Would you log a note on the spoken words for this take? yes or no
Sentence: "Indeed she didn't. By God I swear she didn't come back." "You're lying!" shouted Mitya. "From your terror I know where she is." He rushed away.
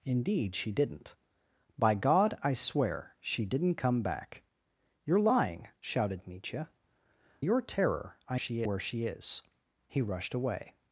yes